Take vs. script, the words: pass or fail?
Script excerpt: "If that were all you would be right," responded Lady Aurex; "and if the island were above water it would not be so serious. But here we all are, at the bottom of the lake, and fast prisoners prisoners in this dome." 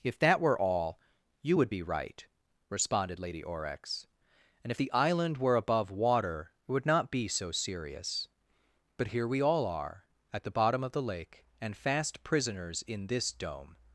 fail